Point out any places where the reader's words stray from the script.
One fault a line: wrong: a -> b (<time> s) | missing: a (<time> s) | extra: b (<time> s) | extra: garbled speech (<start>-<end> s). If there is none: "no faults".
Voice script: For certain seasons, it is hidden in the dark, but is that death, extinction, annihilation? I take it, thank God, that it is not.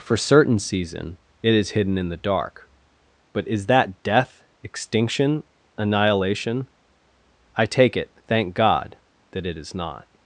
wrong: seasons -> season (0.6 s)